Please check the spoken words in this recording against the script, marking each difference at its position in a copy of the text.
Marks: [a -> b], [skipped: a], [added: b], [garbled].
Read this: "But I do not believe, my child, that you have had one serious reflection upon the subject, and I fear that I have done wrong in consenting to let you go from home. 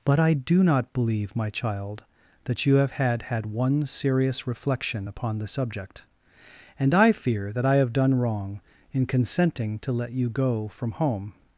"But I do not believe, my child, that you have had [added: had] one serious reflection upon the subject, and I fear that I have done wrong in consenting to let you go from home.